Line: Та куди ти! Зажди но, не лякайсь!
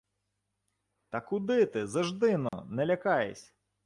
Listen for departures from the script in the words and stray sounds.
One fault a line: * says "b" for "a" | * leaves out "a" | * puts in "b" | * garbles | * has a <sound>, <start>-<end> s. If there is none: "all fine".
* has a dropout, 2.5-2.5 s